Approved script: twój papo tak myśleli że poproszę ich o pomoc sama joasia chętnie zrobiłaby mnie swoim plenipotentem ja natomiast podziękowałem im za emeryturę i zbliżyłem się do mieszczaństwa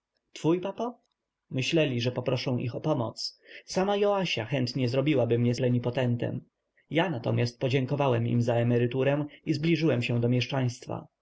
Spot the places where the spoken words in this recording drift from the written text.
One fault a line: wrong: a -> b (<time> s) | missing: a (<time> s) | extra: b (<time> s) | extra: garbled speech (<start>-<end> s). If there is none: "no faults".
missing: tak (1.0 s)
missing: swoim (5.5 s)